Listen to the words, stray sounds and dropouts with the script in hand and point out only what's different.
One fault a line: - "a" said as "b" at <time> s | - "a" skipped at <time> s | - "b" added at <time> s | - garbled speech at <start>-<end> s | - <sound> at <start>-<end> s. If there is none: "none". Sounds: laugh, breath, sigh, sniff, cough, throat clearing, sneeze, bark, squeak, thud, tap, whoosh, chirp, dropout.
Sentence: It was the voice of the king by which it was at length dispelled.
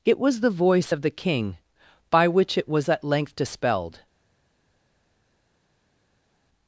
none